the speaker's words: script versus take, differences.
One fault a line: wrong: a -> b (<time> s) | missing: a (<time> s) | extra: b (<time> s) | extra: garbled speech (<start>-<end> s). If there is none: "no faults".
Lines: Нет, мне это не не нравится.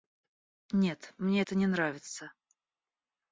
missing: не (1.7 s)